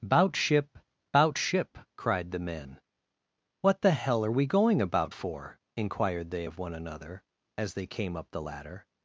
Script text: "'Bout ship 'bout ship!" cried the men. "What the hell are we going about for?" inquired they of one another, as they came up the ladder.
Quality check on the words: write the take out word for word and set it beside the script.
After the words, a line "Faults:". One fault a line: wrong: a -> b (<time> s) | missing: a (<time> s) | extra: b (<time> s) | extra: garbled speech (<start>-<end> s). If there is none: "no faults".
"'Bout ship 'bout ship!" cried the men. "What the hell are we going about for?" inquired they of one another, as they came up the ladder.
Faults:
no faults